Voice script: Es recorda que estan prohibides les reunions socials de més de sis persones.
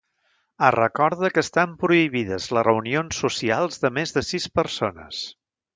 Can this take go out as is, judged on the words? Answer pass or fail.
pass